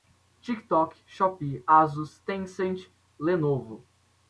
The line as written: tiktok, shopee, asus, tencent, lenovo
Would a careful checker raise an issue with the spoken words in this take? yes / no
no